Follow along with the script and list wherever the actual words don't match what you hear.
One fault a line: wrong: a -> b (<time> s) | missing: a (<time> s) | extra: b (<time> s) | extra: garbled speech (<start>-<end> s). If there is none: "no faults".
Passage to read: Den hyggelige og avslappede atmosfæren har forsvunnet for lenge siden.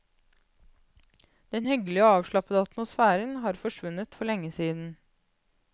no faults